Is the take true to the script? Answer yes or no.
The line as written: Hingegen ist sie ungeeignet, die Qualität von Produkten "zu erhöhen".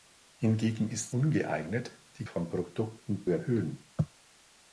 no